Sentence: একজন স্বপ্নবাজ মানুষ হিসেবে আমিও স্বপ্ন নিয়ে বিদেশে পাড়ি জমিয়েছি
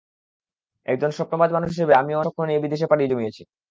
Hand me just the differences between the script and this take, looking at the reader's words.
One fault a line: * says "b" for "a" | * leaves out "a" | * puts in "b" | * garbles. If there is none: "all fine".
all fine